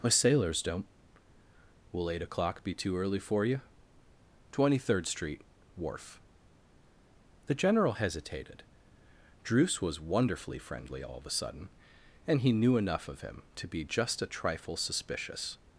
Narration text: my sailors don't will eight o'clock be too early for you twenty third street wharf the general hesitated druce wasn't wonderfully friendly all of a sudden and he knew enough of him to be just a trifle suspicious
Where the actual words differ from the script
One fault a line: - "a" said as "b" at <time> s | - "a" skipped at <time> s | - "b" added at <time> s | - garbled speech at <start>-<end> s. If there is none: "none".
- "wasn't" said as "was" at 9.8 s